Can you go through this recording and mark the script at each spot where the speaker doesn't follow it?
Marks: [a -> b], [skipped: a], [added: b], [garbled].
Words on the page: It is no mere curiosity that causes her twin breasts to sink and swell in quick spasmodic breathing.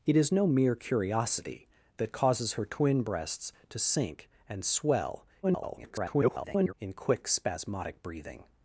It is no mere curiosity that causes her twin breasts to sink and swell [garbled] in quick spasmodic breathing.